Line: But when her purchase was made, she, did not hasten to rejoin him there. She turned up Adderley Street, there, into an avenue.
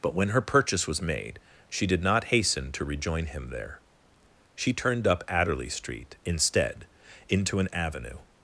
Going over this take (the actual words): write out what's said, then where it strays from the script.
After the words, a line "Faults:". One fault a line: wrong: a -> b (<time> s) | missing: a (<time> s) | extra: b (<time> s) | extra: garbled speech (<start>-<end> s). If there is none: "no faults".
But when her purchase was made, she, did not hasten to rejoin him there. She turned up Adderley Street, instead, into an avenue.
Faults:
wrong: there -> instead (6.3 s)